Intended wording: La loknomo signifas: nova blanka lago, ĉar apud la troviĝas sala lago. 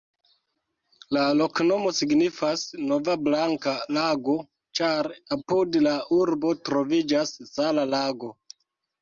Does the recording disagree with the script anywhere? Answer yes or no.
yes